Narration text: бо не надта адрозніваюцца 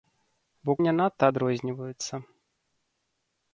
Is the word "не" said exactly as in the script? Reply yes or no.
yes